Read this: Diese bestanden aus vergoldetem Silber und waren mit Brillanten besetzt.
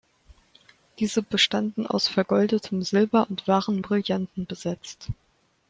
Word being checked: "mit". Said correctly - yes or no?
no